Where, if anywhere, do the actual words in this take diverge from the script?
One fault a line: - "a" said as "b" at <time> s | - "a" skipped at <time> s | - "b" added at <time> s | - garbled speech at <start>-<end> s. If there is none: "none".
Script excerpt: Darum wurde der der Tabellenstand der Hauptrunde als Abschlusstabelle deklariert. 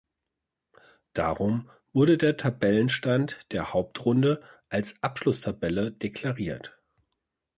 - "der" skipped at 2.4 s